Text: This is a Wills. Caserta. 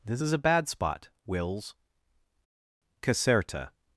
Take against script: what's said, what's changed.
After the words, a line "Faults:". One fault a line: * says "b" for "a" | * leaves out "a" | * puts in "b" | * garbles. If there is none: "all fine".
This is a bad spot, Wills. Caserta.
Faults:
* puts in "bad spot"